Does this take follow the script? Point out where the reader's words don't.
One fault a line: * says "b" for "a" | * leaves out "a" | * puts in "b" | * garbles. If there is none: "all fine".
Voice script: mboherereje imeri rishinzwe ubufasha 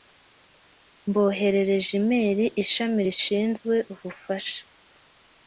* puts in "ishami"